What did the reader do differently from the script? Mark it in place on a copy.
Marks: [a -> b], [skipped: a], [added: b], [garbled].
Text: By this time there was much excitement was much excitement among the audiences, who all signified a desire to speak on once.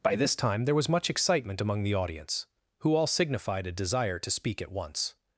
By this time there was much excitement [skipped: was much excitement] among the [audiences, -> audience] who all signified a desire to speak [on -> at] once.